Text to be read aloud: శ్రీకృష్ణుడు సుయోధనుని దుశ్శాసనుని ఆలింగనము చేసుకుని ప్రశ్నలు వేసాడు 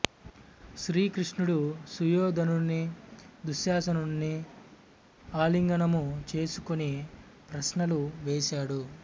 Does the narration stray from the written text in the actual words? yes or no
no